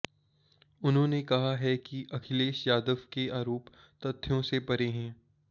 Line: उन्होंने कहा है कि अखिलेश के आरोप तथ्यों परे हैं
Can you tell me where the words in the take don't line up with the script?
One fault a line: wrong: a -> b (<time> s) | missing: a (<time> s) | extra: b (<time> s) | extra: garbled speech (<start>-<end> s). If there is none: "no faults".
extra: यादव (2.7 s)
extra: से (4.4 s)